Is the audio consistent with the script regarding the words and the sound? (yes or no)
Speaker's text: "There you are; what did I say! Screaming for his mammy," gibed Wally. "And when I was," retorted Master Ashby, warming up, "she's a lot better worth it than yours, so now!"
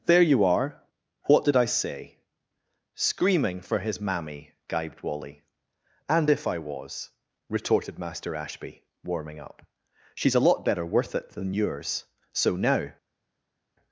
no